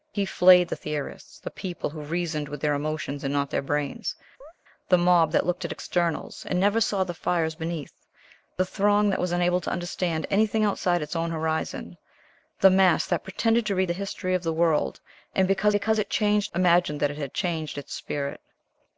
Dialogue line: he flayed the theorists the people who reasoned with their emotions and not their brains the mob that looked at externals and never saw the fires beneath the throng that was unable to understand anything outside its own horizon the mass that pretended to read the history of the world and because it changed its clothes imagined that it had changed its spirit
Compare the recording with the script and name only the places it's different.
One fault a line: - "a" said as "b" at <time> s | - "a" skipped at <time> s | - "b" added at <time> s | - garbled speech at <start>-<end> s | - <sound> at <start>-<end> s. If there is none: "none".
- chirp at 4.4-4.5 s
- "because" added at 15.7 s
- "its clothes" skipped at 16.5 s